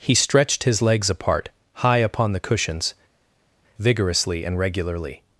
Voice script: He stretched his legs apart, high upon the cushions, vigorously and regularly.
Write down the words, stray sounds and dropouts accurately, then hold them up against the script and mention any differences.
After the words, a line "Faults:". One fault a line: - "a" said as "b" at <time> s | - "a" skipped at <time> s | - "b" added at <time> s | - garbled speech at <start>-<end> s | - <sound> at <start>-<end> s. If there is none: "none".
He stretched his legs apart, high upon the cushions, vigorously and regularly.
Faults:
none